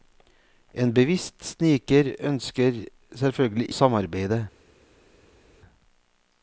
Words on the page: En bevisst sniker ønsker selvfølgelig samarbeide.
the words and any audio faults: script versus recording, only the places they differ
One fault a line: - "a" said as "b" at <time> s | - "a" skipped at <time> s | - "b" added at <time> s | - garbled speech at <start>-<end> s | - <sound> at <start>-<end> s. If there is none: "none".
none